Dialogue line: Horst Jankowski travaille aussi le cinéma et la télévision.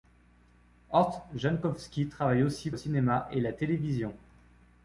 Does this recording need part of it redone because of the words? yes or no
no